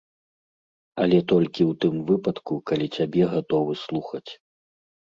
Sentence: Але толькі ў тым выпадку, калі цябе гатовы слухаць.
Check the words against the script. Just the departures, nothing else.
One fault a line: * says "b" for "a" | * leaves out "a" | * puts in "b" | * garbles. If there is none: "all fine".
all fine